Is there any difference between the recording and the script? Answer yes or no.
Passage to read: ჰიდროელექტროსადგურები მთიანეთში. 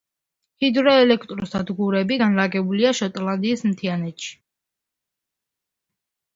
yes